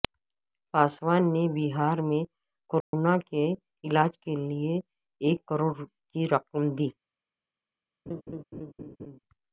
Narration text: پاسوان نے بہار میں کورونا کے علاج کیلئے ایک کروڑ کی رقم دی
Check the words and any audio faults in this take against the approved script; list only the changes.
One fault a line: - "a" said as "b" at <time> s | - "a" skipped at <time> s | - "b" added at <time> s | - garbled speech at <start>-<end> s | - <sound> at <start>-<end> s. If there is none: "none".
- dropout at 2.8-2.9 s
- laugh at 8.1-9.2 s